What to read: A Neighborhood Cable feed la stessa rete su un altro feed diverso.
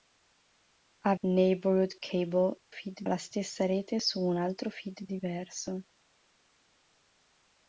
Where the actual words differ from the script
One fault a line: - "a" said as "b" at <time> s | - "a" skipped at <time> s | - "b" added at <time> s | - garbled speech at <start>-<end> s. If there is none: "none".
none